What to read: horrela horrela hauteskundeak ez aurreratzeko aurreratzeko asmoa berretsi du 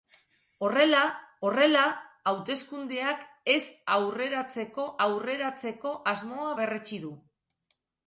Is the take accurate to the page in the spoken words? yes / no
yes